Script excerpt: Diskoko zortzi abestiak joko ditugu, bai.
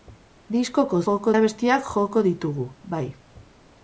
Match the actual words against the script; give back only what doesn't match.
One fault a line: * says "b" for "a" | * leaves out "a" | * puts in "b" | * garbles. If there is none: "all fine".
* says "joko" for "zortzi"